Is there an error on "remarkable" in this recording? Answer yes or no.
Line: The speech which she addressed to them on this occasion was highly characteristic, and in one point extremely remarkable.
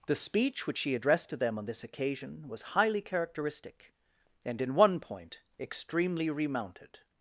yes